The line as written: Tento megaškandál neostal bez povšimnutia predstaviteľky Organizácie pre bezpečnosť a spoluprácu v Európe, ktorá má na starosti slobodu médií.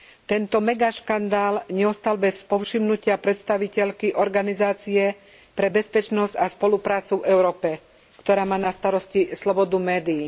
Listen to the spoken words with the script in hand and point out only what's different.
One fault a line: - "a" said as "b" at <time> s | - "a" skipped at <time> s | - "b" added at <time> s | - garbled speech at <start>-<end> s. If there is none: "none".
none